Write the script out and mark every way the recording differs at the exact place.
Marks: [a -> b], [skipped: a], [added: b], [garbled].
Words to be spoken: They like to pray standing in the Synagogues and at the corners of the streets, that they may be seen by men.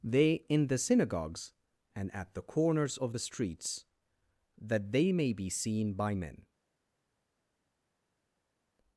They [skipped: like to pray standing] in the Synagogues and at the corners of the streets, that they may be seen by men.